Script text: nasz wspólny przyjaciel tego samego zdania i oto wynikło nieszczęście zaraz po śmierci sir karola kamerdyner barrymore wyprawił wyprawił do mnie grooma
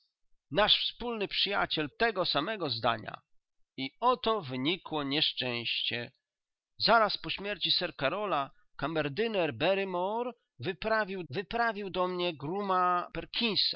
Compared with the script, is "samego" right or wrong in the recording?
right